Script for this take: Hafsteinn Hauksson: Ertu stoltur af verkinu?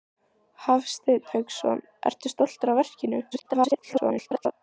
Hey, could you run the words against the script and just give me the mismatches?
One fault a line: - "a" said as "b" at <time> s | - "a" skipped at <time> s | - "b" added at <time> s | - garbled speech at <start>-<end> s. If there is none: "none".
- garbled speech at 3.3-4.5 s